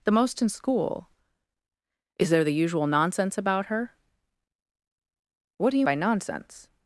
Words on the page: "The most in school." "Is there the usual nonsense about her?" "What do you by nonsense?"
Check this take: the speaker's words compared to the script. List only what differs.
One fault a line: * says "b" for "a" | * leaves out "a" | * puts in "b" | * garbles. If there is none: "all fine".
all fine